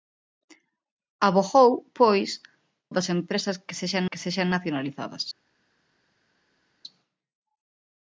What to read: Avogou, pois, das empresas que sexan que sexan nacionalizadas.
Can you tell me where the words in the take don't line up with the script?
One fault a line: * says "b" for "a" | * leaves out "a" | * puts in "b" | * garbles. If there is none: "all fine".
all fine